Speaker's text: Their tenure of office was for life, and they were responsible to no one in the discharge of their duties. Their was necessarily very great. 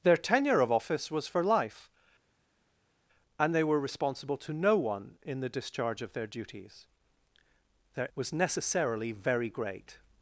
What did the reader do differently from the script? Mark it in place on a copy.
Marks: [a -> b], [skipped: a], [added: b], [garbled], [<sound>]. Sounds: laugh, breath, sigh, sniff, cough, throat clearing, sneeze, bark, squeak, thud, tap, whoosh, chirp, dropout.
Their tenure of office was for life, and they were responsible to no one in the discharge of their duties. Their was necessarily very great.